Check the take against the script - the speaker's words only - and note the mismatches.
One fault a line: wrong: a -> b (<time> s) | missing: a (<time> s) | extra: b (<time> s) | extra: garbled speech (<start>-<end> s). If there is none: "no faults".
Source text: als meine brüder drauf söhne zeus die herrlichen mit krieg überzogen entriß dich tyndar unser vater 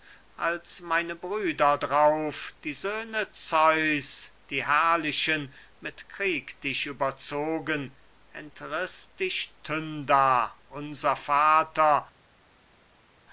extra: die (2.6 s)
extra: dich (6.6 s)